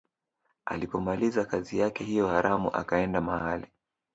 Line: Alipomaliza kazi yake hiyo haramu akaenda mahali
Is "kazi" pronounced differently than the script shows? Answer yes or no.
no